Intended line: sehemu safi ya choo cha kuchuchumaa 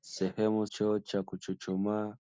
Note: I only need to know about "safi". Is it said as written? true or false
false